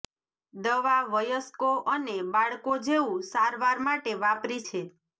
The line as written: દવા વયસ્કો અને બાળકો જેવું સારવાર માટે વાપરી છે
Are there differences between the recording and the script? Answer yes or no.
no